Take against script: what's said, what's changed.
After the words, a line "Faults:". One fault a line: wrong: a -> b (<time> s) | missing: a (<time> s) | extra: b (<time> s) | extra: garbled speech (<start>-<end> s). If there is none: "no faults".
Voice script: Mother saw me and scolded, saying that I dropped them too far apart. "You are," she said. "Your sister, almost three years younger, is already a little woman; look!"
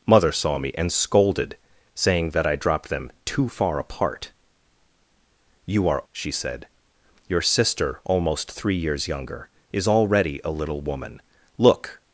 Mother saw me and scolded, saying that I dropped them too far apart. "You are," she said. "Your sister, almost three years younger, is already a little woman; look!"
Faults:
no faults